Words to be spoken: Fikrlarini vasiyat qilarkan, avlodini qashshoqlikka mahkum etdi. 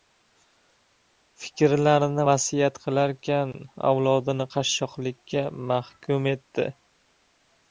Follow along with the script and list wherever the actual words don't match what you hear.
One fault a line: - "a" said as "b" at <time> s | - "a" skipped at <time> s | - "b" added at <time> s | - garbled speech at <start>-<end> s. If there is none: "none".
none